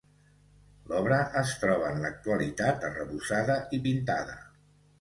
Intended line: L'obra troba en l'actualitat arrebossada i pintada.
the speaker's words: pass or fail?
fail